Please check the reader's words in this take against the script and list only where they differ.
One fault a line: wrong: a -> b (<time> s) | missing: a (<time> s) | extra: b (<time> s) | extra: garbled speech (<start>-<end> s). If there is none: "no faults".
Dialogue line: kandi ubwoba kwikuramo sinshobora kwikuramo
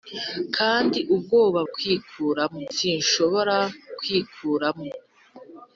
no faults